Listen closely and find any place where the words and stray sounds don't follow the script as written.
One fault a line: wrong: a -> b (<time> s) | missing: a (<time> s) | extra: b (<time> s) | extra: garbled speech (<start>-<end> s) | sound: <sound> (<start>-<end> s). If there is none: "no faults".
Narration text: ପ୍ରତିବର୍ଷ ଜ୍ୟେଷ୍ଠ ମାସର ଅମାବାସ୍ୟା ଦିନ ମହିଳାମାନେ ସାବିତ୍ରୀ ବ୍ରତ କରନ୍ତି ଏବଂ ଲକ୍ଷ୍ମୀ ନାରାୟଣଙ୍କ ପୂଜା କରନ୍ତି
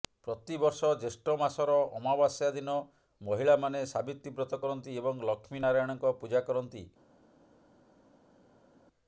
no faults